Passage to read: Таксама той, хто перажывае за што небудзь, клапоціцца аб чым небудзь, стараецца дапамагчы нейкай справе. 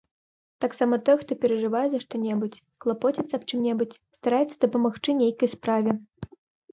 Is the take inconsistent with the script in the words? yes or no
no